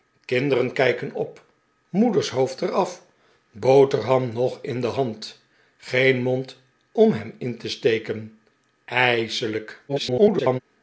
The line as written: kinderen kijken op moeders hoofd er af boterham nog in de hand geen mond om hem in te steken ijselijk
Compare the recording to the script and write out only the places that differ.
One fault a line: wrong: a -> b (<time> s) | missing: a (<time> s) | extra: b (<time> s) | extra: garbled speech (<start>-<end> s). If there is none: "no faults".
extra: garbled speech (9.9-10.6 s)